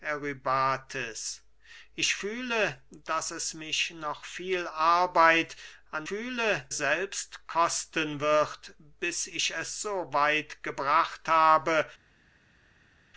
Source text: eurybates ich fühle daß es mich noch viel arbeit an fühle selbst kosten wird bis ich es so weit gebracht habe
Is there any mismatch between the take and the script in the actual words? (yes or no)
no